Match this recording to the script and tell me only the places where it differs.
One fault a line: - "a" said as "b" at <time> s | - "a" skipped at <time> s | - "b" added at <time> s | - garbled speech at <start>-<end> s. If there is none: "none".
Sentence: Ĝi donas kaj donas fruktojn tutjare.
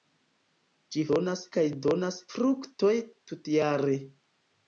none